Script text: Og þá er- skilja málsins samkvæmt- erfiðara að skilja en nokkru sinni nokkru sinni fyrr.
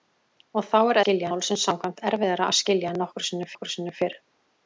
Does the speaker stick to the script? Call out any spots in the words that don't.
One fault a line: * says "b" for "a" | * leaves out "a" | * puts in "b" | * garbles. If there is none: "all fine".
all fine